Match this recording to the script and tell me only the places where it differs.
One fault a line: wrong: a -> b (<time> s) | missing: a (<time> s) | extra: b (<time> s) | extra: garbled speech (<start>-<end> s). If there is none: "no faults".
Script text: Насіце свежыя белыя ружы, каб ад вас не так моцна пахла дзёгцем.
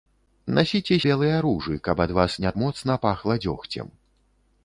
missing: свежыя (0.9 s)
missing: так (2.5 s)